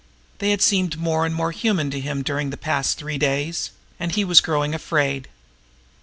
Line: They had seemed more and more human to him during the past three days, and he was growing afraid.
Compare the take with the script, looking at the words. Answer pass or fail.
pass